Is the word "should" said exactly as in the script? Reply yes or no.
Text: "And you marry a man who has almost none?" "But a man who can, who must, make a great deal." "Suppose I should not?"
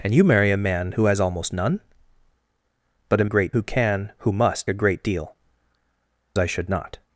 yes